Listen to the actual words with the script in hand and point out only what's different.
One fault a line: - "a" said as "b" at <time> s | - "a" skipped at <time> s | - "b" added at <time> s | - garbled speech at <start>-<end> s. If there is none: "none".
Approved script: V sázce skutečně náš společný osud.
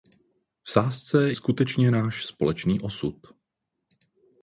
none